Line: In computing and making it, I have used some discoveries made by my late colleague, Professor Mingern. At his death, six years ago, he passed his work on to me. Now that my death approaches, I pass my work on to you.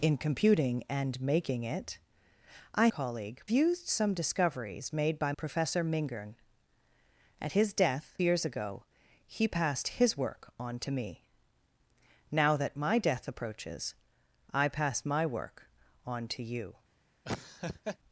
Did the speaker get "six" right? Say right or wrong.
wrong